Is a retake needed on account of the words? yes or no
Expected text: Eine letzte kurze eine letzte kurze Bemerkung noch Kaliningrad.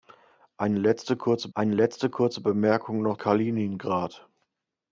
no